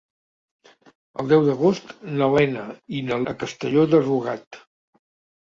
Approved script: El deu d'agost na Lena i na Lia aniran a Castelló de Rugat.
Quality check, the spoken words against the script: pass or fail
fail